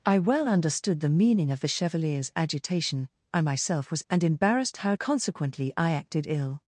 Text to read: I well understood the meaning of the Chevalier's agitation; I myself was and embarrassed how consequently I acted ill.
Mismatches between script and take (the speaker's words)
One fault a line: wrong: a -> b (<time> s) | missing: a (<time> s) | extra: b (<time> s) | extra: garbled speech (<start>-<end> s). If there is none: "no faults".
no faults